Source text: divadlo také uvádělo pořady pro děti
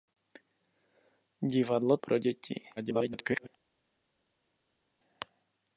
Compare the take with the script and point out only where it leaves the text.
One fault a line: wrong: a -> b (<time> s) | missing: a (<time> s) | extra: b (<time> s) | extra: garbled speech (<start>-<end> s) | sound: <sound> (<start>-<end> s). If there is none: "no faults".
missing: také uvádělo pořady (2.0 s)
extra: garbled speech (2.8-3.5 s)